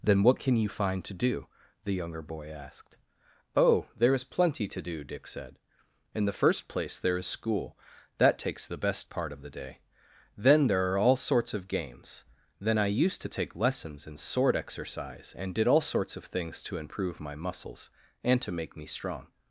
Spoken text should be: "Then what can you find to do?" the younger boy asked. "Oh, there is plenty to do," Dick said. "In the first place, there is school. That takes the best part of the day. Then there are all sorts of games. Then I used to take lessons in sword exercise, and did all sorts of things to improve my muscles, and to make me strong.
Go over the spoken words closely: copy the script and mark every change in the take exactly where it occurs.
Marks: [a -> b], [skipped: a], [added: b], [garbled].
"Then what can you find to do?" the younger boy asked. "Oh, there is plenty to do," Dick said. "In the first place, there is school. That takes the best part of the day. Then there are all sorts of games. Then I used to take lessons in sword exercise, and did all sorts of things to improve my muscles, and to make me strong.